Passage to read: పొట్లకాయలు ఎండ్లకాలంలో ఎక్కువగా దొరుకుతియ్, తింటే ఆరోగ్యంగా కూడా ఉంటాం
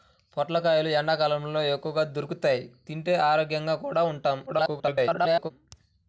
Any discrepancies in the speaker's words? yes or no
yes